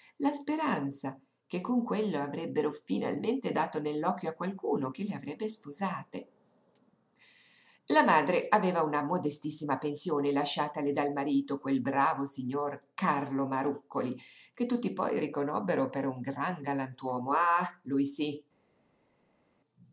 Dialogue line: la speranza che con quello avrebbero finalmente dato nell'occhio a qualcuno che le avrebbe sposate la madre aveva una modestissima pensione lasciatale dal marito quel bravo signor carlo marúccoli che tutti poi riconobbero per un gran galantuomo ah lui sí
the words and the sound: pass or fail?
pass